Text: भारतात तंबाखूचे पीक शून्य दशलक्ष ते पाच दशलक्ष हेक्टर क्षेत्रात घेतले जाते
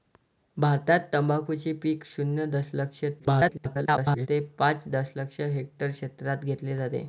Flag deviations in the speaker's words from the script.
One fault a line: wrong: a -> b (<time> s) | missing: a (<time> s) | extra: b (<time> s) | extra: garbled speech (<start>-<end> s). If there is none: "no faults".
extra: garbled speech (3.2-4.3 s)